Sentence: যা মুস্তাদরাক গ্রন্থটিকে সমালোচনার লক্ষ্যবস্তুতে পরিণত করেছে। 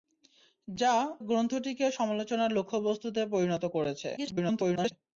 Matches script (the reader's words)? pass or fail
fail